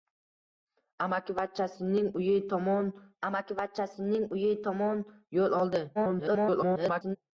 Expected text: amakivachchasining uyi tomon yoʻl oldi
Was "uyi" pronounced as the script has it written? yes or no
yes